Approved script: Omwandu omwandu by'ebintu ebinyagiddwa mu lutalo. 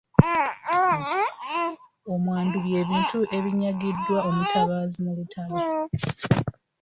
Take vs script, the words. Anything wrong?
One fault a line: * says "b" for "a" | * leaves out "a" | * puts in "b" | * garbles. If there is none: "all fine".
* leaves out "omwandu"
* puts in "omutabaazi"